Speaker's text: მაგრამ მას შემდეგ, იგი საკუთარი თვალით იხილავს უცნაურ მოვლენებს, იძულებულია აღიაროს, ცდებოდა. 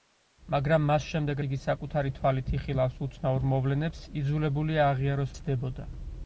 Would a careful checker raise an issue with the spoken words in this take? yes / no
no